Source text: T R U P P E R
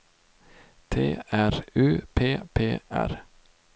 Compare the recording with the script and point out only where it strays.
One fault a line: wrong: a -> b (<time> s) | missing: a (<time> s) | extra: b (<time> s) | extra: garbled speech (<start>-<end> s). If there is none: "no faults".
missing: E (2.8 s)